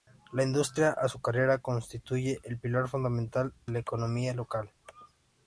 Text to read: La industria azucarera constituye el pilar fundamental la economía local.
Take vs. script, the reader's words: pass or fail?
pass